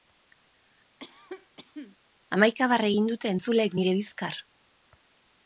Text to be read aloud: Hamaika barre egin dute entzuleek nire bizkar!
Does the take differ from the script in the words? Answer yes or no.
no